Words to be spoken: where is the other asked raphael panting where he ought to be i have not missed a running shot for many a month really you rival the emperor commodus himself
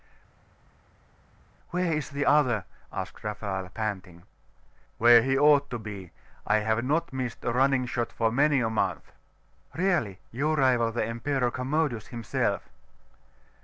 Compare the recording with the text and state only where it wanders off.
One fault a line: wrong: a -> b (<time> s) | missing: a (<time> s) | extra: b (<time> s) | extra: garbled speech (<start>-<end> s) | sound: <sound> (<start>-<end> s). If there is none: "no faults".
no faults